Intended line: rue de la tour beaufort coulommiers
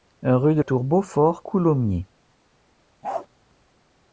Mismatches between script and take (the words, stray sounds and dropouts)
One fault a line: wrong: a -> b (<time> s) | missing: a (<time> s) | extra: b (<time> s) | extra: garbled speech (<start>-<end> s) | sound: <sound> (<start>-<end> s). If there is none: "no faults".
missing: la (0.6 s)
sound: bark (3.0-3.3 s)